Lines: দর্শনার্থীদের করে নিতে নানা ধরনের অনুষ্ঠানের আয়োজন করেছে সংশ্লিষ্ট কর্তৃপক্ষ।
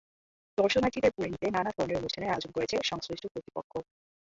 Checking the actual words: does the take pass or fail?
pass